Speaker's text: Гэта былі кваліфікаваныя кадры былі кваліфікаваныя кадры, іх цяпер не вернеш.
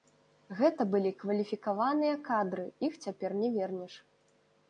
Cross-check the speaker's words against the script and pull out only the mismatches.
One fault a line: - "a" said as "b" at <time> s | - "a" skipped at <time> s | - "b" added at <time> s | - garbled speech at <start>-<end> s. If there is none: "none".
- "былі кваліфікаваныя кадры" skipped at 2.6 s